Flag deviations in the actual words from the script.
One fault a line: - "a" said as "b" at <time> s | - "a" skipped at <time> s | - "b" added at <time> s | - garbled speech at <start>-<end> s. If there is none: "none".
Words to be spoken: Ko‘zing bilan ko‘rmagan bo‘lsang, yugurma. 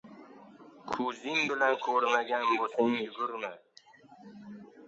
none